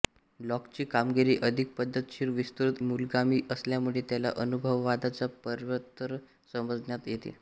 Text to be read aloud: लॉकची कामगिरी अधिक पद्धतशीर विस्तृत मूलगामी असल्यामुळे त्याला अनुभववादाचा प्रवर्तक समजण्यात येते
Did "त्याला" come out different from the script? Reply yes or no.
no